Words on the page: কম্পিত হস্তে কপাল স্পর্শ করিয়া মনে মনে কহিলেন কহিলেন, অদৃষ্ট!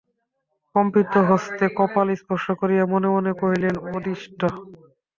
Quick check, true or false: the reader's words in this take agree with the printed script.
false